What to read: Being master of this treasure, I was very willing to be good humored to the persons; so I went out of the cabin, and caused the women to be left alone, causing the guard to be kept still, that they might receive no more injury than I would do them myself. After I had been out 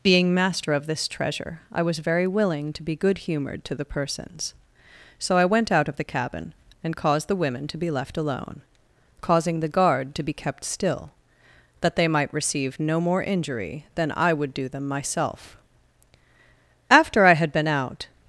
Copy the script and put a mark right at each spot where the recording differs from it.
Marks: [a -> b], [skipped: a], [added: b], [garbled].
Being master of this treasure, I was very willing to be good humored to the persons; so I went out of the cabin, and caused the women to be left alone, causing the guard to be kept still, that they might receive no more injury than I would do them myself. After I had been out